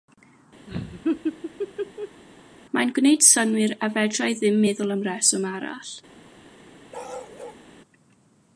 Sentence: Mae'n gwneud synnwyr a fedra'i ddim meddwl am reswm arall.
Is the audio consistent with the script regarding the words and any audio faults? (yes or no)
no